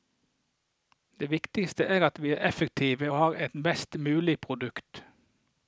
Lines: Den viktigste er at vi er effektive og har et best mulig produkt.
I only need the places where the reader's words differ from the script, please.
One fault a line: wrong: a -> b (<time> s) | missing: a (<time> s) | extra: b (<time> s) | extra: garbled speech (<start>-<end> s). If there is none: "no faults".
wrong: Den -> Det (1.2 s)